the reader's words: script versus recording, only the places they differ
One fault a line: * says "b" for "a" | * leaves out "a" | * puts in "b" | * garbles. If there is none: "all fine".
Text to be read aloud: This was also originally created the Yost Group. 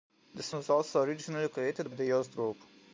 all fine